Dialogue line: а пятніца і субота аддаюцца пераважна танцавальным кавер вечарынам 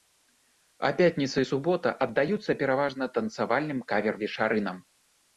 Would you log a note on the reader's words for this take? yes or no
no